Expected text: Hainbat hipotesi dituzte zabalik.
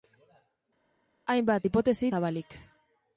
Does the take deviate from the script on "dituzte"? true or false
true